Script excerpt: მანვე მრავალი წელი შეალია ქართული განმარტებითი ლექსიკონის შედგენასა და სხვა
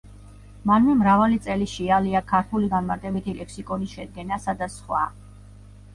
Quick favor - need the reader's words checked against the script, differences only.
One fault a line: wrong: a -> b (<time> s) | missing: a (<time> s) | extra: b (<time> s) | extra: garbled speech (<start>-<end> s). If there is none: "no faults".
no faults